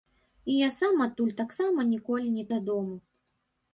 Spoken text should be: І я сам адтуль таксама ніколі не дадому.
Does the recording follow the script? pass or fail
pass